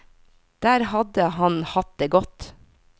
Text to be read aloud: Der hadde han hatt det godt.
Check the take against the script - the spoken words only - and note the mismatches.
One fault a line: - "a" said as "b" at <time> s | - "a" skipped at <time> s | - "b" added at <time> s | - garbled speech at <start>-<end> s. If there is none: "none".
none